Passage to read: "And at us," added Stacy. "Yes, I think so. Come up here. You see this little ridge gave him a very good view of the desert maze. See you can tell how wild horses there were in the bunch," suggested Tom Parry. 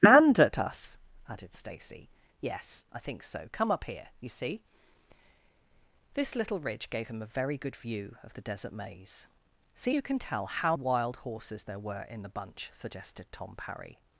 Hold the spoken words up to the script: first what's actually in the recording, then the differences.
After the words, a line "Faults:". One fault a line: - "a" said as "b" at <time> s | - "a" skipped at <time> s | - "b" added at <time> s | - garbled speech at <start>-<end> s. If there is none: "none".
"And at us," added Stacy. "Yes, I think so. Come up here. You see this little ridge gave him a very good view of the desert maze. See you can tell how wild horses there were in the bunch," suggested Tom Parry.
Faults:
none